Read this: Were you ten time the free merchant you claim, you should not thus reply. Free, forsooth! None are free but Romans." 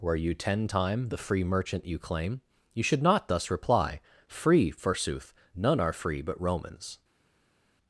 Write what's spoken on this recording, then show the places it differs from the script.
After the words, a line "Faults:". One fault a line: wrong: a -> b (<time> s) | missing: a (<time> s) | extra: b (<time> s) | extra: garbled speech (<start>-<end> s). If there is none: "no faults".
Were you ten time the free merchant you claim, you should not thus reply. Free, forsooth! None are free but Romans."
Faults:
no faults